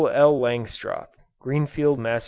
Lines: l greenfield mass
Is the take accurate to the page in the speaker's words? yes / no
no